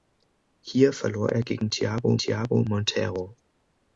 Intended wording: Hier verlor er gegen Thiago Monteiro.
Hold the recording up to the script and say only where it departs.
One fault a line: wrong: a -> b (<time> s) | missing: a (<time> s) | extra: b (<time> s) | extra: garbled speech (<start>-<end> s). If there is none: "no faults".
extra: Thiago (2.2 s)